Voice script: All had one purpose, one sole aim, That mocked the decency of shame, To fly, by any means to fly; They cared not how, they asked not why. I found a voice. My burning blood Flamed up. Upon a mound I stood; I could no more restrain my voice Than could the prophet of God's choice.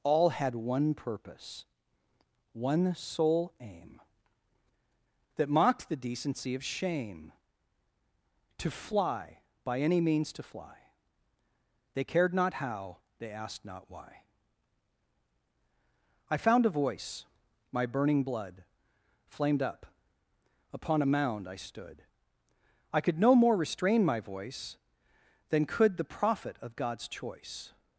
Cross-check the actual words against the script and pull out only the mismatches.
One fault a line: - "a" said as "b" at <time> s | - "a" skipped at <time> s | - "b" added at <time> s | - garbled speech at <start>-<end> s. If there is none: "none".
none